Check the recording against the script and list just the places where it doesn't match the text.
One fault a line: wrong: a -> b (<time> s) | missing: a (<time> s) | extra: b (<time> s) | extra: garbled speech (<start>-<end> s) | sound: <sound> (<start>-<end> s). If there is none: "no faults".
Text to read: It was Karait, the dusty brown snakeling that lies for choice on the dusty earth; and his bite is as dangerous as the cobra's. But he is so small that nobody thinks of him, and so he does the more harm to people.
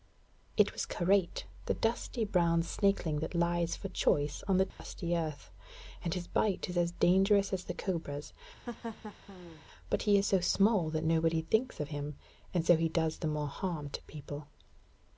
sound: dropout (4.7-4.8 s)
sound: laugh (8.7-9.6 s)